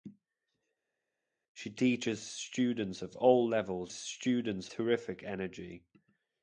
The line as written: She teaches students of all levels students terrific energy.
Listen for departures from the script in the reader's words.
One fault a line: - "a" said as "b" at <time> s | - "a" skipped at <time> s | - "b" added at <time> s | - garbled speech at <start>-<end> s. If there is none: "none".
none